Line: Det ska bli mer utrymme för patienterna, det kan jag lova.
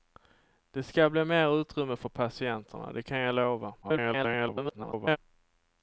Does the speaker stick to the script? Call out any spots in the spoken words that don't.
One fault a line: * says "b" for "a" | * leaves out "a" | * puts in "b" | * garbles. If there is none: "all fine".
* garbles